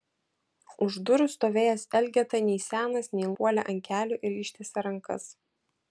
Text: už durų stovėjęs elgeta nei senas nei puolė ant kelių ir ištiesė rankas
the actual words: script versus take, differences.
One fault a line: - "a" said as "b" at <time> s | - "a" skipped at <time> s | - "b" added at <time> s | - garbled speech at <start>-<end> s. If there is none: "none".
none